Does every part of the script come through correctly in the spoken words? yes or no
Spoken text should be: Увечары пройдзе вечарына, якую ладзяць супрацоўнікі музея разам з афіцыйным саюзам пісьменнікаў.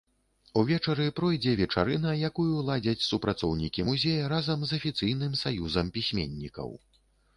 yes